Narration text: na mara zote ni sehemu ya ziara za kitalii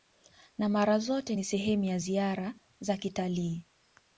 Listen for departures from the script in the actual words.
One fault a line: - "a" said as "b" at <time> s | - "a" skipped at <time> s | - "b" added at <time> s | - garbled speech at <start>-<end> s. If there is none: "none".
none